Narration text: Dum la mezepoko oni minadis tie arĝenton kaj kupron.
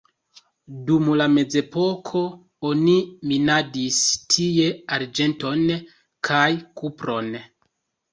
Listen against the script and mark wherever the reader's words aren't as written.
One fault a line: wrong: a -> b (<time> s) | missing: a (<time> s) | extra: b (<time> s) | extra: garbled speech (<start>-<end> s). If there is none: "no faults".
no faults